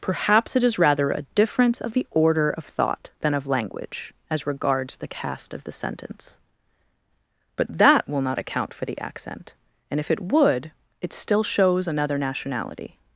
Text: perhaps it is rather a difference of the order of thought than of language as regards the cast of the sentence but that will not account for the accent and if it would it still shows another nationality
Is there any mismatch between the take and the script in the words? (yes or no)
no